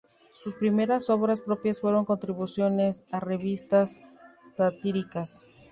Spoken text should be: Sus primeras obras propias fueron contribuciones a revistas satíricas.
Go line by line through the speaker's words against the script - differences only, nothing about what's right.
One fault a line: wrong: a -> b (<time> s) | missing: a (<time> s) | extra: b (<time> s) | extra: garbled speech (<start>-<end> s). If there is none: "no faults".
no faults